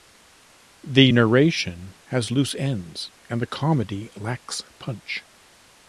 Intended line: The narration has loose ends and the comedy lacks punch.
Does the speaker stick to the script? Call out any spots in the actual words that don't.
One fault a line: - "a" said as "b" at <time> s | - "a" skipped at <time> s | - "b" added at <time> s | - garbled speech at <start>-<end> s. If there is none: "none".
none